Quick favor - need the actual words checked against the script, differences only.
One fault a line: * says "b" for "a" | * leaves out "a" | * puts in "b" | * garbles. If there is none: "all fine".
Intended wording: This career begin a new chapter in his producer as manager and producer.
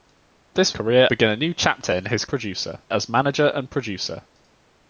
all fine